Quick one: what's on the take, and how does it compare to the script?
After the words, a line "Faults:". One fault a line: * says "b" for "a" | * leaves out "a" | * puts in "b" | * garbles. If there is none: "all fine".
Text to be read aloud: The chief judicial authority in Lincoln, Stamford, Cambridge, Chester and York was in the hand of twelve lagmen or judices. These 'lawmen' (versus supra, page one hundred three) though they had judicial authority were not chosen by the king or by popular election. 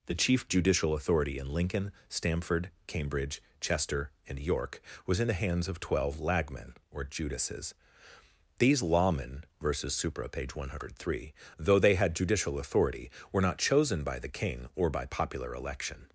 The chief judicial authority in Lincoln, Stamford, Cambridge, Chester and York was in the hands of twelve lagmen or judices. These 'lawmen' (versus supra, page one hundred three) though they had judicial authority were not chosen by the king or by popular election.
Faults:
* says "hands" for "hand"